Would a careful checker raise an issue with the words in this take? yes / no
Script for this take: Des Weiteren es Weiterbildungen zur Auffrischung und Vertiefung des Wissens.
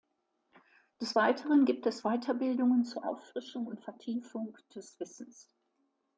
yes